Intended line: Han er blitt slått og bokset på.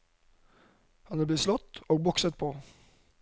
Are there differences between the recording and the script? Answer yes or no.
no